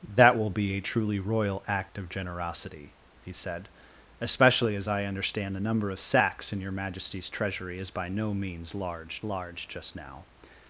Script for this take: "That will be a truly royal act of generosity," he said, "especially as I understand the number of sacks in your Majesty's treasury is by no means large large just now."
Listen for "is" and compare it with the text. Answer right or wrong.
right